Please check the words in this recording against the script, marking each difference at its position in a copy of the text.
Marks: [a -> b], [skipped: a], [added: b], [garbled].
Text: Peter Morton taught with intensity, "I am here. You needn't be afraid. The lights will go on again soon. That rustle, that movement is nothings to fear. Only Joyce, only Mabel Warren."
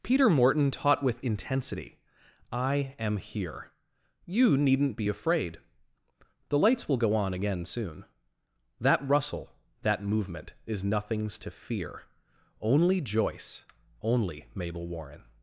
Peter Morton taught with intensity, "I am here. You needn't be afraid. The lights will go on again soon. That rustle, that movement is nothings to fear. Only Joyce, only Mabel Warren."